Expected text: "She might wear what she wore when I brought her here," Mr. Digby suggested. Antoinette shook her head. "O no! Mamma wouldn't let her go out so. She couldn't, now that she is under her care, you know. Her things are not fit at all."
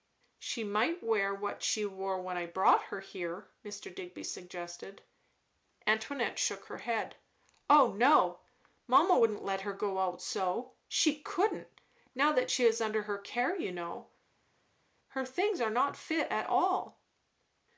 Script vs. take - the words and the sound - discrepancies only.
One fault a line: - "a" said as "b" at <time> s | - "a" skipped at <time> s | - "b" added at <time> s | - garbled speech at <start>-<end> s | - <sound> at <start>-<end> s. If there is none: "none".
none